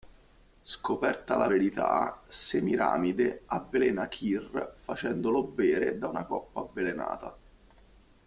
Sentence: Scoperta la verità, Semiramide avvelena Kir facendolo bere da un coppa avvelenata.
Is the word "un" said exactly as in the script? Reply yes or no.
no